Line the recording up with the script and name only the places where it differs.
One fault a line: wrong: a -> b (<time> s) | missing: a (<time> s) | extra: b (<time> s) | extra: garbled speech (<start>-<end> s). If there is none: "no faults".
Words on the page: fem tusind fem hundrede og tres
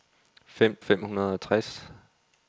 missing: tusind (0.8 s)